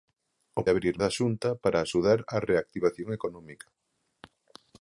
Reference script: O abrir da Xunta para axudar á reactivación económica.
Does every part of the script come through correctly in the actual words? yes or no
yes